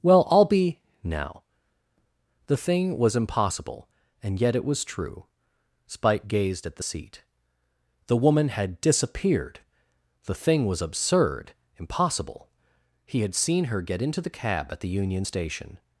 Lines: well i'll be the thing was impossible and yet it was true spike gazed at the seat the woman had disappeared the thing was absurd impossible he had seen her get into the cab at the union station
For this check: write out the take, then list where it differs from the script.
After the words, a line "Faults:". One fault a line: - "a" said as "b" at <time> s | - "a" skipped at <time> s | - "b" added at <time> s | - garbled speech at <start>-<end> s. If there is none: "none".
well i'll be now the thing was impossible and yet it was true spike gazed at the seat the woman had disappeared the thing was absurd impossible he had seen her get into the cab at the union station
Faults:
- "now" added at 1.0 s